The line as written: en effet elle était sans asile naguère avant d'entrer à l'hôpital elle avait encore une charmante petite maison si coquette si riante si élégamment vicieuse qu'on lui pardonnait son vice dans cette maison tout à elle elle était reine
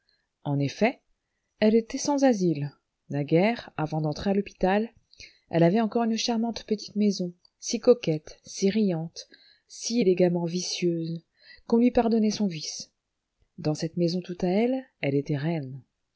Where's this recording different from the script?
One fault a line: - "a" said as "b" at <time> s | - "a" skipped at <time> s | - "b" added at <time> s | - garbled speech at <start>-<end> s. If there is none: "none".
none